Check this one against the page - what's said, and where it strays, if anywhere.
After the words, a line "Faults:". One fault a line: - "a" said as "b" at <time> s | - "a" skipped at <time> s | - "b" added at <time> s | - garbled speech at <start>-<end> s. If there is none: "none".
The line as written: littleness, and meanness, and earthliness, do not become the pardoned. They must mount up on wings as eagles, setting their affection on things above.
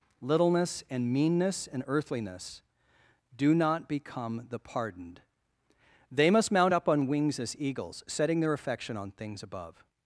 littleness, and meanness, and earthliness, do not become the pardoned. They must mount up on wings as eagles, setting their affection on things above.
Faults:
none